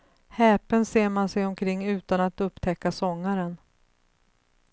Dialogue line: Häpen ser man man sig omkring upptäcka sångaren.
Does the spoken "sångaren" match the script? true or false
true